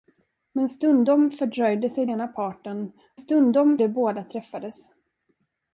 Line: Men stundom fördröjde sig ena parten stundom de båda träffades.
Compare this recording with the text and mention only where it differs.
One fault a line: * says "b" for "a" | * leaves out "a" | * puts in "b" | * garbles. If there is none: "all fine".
all fine